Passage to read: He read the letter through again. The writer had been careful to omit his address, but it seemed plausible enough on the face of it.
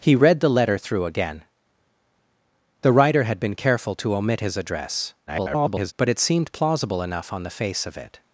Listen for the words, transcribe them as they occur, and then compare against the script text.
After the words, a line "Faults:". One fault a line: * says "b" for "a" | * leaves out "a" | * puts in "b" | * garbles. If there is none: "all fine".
He read the letter through again. The writer had been careful to omit his address, [garbled] but it seemed plausible enough on the face of it.
Faults:
* garbles